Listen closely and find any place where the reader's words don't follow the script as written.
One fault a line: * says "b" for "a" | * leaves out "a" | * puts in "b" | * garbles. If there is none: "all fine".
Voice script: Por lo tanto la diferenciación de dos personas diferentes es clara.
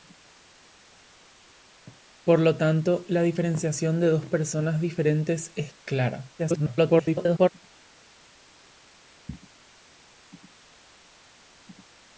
* garbles